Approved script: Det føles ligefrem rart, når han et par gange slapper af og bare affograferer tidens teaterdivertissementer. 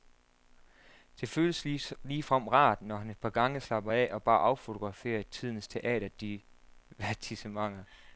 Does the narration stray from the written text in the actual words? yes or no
no